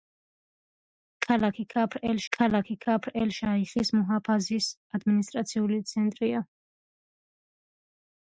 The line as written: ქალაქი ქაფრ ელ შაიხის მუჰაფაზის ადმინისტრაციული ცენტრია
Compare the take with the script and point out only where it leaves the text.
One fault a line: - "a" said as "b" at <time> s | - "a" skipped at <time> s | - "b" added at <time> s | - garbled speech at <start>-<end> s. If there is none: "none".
- "ქალაქი ქაფრ ელ" added at 2.4 s